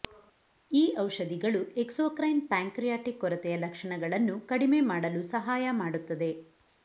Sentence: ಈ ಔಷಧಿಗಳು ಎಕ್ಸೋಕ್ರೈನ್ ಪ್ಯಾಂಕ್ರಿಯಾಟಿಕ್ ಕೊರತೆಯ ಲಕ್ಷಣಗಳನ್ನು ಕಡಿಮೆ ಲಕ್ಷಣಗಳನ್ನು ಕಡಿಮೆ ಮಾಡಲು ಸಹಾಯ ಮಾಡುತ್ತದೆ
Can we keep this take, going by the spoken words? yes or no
no